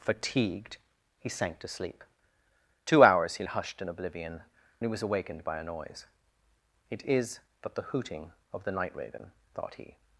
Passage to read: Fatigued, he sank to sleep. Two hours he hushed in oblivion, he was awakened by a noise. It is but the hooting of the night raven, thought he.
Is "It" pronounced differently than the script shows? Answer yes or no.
no